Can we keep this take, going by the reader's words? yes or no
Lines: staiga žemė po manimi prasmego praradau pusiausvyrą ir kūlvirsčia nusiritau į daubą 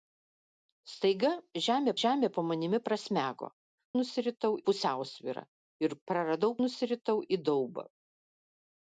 no